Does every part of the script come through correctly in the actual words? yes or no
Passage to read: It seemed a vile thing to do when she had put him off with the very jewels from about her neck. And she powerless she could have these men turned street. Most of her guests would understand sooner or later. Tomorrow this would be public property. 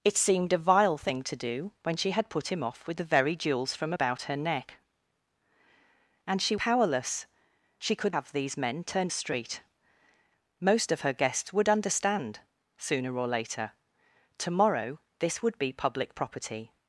yes